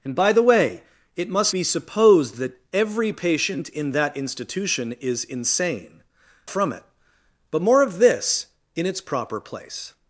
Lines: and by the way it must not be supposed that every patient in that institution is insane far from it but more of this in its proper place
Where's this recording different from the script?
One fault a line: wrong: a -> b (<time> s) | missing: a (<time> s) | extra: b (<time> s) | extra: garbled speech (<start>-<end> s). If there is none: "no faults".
missing: not (1.6 s)
missing: far (6.0 s)